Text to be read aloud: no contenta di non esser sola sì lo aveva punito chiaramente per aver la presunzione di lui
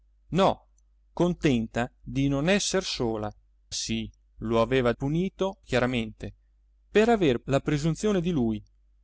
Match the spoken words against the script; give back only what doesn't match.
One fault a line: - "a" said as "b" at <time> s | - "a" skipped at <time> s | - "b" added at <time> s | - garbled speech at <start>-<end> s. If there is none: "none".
none